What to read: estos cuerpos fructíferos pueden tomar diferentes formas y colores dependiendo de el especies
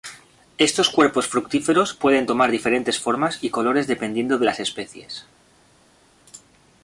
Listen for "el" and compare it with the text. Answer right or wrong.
wrong